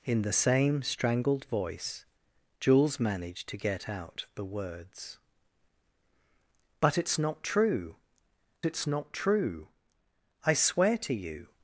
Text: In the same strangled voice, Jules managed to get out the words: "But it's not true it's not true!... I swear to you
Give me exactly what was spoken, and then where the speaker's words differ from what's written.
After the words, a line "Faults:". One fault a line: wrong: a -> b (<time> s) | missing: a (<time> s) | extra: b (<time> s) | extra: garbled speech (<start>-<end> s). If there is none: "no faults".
In the same strangled voice, Jules managed to get out the words: "But it's not true it's not true!... I swear to you
Faults:
no faults